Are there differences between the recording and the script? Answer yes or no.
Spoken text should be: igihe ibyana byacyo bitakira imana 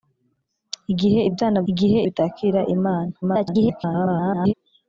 yes